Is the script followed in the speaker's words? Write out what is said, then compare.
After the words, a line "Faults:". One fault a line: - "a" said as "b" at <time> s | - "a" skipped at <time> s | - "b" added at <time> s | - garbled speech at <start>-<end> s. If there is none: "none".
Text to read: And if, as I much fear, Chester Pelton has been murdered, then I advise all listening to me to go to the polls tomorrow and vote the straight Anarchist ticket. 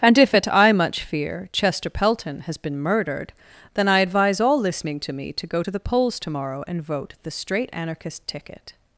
And if, at I much fear, Chester Pelton has been murdered, then I advise all listening to me to go to the polls tomorrow and vote the straight Anarchist ticket.
Faults:
- "as" said as "at" at 0.3 s